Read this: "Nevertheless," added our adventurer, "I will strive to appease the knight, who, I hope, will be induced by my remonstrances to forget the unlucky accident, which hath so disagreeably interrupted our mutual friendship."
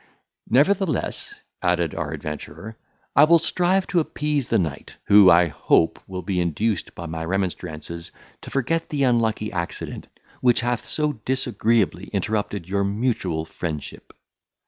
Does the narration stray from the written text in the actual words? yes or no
yes